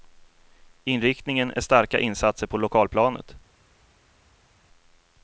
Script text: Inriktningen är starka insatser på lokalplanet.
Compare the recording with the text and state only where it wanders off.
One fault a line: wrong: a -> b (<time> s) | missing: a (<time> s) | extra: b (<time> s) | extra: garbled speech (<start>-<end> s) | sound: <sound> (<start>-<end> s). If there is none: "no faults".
no faults